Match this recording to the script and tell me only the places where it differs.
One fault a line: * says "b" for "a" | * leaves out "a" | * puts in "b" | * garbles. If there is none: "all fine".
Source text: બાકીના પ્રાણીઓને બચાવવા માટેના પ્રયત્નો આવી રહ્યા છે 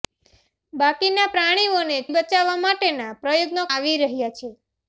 all fine